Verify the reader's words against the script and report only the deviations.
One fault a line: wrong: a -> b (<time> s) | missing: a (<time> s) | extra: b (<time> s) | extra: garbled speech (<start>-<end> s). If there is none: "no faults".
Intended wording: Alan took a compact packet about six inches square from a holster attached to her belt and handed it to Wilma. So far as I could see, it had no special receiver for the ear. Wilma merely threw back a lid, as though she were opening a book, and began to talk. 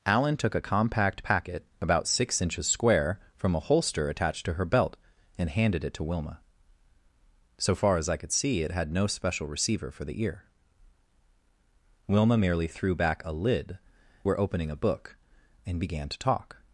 missing: as though she (13.8 s)